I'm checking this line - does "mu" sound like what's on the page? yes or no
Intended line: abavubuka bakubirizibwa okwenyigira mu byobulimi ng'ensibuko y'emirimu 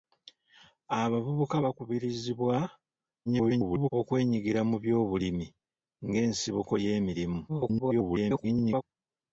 yes